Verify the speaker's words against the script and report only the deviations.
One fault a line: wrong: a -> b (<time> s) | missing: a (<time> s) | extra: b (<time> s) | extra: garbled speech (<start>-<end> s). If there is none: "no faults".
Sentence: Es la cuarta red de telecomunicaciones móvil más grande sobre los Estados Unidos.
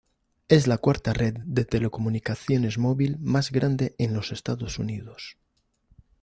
wrong: sobre -> en (4.0 s)